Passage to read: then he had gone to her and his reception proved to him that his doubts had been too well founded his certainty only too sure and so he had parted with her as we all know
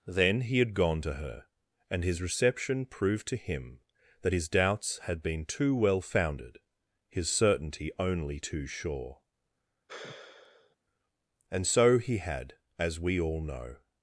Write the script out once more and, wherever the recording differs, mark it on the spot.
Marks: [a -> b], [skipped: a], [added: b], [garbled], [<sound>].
then he had gone to her and his reception proved to him that his doubts had been too well founded his certainty only too sure [sigh] and so he had [skipped: parted with her] as we all know